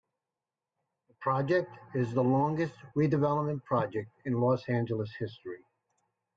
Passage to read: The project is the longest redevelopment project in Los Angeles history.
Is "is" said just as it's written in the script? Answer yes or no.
yes